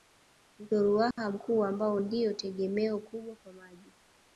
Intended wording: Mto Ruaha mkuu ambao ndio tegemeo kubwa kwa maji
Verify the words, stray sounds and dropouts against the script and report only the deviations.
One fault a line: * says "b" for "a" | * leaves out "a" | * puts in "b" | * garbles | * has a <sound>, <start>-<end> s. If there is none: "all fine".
* has a dropout, 1.1-1.2 s